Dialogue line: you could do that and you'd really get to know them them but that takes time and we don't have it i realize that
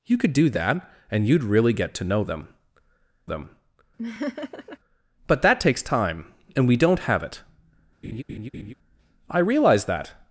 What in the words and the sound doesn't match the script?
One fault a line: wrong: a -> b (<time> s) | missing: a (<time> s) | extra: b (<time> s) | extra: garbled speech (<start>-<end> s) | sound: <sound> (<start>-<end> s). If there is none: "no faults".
sound: laugh (4.0-4.8 s)
sound: laugh (8.0-8.7 s)